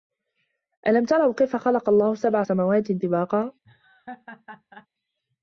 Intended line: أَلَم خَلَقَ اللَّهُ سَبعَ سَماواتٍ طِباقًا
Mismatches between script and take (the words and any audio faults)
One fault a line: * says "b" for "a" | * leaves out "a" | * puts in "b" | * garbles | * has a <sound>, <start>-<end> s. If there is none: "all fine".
* puts in "تَرَوا كَيفَ"
* has a laugh, 3.6-4.9 s